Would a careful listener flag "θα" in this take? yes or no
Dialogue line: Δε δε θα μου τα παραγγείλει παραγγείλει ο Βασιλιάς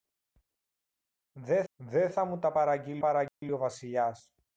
no